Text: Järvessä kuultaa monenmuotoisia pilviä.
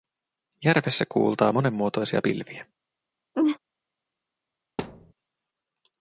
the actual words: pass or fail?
pass